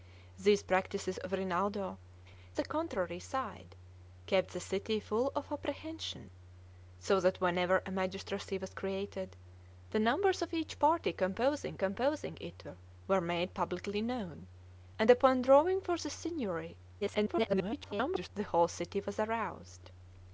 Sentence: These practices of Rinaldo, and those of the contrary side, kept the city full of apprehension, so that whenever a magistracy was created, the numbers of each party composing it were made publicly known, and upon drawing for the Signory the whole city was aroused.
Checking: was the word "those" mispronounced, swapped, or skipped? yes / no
yes